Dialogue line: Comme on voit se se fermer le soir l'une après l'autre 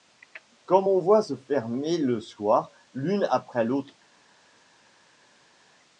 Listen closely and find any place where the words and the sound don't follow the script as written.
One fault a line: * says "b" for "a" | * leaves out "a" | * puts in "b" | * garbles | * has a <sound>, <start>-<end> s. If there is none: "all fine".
* leaves out "se"